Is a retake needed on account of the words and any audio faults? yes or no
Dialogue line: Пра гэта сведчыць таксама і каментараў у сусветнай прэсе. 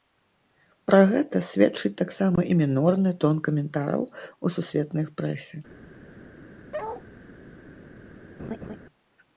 yes